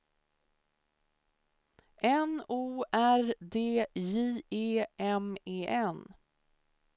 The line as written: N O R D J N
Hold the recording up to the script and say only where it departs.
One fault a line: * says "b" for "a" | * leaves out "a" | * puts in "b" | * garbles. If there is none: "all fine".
* puts in "E M E"